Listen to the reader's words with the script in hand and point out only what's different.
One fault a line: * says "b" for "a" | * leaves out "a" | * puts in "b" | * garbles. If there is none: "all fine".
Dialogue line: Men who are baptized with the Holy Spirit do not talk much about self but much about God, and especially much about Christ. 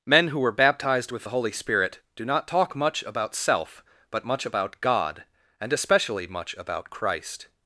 * says "were" for "are"